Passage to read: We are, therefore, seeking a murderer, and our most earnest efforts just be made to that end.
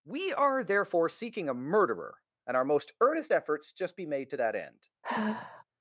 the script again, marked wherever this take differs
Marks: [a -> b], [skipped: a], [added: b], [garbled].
We are, therefore, seeking a murderer, and our most earnest efforts just be made to that end.